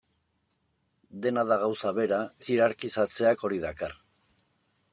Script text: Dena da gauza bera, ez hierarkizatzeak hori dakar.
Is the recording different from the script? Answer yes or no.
no